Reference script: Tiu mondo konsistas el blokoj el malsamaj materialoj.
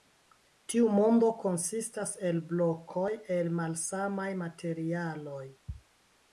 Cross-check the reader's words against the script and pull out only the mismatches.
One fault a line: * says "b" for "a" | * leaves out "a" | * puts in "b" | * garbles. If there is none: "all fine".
all fine